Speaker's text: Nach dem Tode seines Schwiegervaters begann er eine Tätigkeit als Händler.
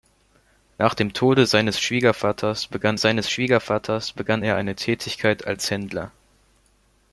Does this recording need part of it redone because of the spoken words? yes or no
yes